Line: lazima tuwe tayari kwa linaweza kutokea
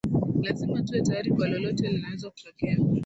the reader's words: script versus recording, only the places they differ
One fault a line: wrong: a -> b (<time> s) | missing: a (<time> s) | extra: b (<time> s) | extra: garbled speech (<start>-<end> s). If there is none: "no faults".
extra: lolote (1.5 s)